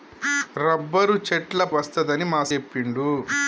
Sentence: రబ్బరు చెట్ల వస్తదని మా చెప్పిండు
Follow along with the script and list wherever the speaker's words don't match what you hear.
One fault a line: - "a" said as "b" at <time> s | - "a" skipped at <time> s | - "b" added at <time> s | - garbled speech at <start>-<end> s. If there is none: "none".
none